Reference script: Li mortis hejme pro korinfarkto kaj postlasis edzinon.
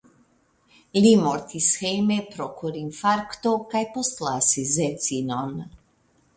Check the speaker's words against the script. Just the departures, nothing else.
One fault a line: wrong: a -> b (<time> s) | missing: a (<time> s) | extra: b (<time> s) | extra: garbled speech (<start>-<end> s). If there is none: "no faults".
no faults